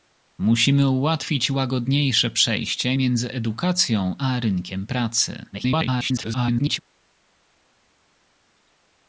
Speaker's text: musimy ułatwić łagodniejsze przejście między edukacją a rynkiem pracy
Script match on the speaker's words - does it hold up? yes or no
no